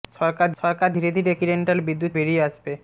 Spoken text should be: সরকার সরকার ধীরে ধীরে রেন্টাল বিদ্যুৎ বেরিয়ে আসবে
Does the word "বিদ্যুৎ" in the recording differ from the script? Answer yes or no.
no